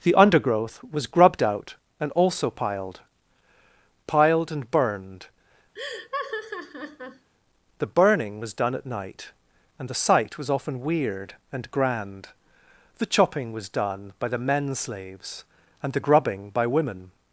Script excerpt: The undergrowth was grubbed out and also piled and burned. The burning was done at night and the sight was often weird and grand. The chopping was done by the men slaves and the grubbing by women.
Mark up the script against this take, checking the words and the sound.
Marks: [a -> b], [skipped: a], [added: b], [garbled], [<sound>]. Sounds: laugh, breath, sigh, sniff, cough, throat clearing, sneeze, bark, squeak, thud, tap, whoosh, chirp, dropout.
The undergrowth was grubbed out and also piled [added: piled] and burned. [laugh] The burning was done at night and the sight was often weird and grand. The chopping was done by the men slaves and the grubbing by women.